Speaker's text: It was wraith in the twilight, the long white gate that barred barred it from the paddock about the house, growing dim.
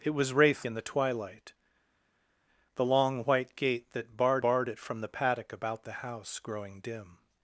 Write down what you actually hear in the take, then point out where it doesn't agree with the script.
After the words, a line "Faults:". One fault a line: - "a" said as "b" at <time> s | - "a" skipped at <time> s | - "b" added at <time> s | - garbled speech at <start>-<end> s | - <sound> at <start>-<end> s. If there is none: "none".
It was wraith in the twilight, the long white gate that barred barred it from the paddock about the house, growing dim.
Faults:
none